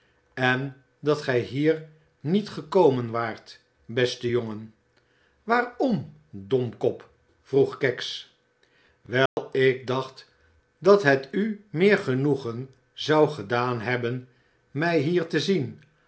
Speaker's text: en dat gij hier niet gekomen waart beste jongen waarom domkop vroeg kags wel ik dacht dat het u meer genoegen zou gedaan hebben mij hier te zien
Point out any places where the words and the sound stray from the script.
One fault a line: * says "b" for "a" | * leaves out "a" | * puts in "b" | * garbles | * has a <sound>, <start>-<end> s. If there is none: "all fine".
* has a dropout, 9.3-9.4 s